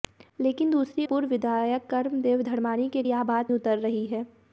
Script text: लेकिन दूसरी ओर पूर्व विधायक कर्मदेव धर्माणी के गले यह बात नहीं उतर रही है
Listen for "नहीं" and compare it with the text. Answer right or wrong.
wrong